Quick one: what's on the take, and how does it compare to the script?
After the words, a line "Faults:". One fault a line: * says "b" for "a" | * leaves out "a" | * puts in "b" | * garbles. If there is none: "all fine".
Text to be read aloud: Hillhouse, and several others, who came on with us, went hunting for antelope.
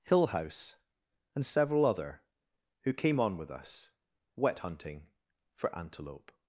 Hillhouse, and several other, who came on with us, wet hunting for antelope.
Faults:
* says "other" for "others"
* says "wet" for "went"